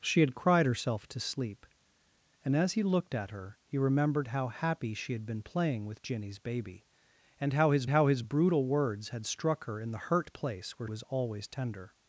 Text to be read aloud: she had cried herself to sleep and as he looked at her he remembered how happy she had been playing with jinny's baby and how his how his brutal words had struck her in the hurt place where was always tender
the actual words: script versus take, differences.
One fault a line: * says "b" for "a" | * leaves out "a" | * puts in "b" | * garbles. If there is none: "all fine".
all fine